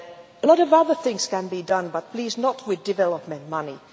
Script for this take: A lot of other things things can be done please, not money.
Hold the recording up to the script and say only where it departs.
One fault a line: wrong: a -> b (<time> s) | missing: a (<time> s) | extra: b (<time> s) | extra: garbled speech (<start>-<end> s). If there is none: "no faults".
missing: things (1.3 s)
extra: but (1.9 s)
extra: with development (2.7 s)